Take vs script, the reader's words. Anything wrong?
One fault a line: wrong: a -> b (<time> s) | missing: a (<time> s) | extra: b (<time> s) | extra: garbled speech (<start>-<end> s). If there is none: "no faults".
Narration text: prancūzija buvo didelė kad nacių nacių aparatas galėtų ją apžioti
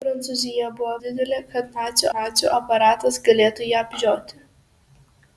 no faults